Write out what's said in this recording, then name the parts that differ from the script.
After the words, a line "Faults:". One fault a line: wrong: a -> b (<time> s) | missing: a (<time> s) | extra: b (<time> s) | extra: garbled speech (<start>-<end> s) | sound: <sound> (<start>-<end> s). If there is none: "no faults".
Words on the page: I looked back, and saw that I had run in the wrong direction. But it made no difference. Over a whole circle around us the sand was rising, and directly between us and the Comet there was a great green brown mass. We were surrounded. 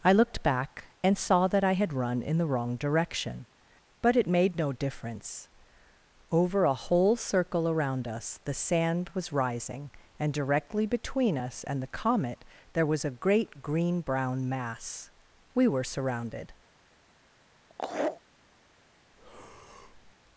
I looked back, and saw that I had run in the wrong direction. But it made no difference. Over a whole circle around us the sand was rising, and directly between us and the Comet there was a great green brown mass. We were surrounded.
Faults:
sound: laugh (17.7-18.2 s)
sound: breath (19.1-20.1 s)